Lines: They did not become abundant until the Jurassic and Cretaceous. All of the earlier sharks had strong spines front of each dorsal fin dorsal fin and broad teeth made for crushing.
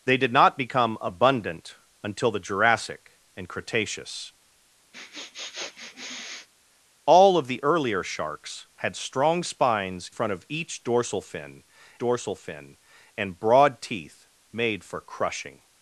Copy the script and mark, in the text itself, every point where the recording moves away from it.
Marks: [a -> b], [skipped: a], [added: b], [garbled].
They did not become abundant until the Jurassic and Cretaceous. All of the earlier sharks had strong spines front of each dorsal fin dorsal fin and broad teeth made for crushing.